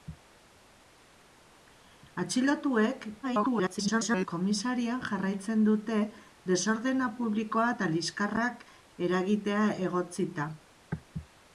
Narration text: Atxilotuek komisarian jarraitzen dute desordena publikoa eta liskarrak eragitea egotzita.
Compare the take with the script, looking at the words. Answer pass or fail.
fail